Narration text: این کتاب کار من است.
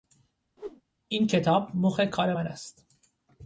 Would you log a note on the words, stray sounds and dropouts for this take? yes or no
yes